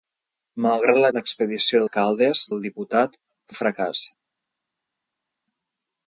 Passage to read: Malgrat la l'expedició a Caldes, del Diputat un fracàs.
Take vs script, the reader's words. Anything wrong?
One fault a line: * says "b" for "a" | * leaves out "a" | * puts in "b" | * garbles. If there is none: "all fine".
all fine